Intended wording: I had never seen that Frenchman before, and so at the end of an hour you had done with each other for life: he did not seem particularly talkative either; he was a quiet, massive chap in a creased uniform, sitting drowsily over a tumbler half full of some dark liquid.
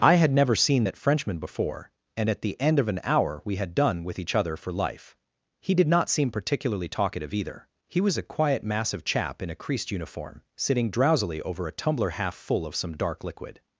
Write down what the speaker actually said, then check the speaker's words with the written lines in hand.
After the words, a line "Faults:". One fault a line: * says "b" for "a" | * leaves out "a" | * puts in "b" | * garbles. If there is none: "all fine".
I had never seen that Frenchman before, and at the end of an hour we had done with each other for life: he did not seem particularly talkative either; he was a quiet, massive chap in a creased uniform, sitting drowsily over a tumbler half full of some dark liquid.
Faults:
* leaves out "so"
* says "we" for "you"